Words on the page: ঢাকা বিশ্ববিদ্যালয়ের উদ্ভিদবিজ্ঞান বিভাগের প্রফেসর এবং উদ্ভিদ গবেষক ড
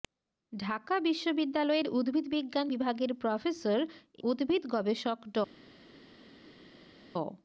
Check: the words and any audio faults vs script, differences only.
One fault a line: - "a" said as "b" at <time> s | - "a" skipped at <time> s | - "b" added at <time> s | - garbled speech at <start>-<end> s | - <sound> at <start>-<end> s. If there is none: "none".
- "এবং" skipped at 3.8 s